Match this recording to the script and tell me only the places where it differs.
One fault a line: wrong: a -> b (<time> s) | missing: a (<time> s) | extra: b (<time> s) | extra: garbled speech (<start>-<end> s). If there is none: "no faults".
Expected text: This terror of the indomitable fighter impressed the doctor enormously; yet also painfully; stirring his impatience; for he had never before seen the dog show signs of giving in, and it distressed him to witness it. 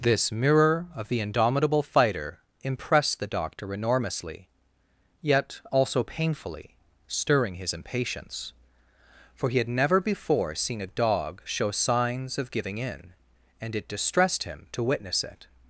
wrong: terror -> mirror (0.3 s)
wrong: the -> a (10.8 s)